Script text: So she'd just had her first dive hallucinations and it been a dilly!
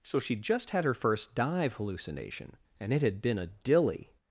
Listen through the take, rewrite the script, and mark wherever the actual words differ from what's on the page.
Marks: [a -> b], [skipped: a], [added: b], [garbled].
So she'd just had her first dive [hallucinations -> hallucination] and it [added: had] been a dilly!